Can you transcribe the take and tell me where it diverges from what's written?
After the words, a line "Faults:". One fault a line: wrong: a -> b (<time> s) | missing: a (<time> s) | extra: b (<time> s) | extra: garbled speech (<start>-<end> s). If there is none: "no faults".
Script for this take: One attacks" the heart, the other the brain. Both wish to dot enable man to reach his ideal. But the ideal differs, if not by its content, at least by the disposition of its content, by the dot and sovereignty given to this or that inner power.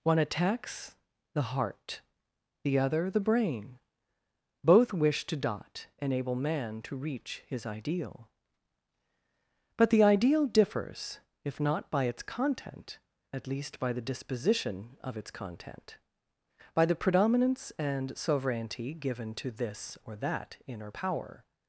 One attacks" the heart, the other the brain. Both wish to dot enable man to reach his ideal. But the ideal differs, if not by its content, at least by the disposition of its content, by the predominance and sovereignty given to this or that inner power.
Faults:
wrong: dot -> predominance (16.9 s)